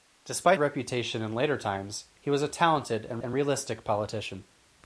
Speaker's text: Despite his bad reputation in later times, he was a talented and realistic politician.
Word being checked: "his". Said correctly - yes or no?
no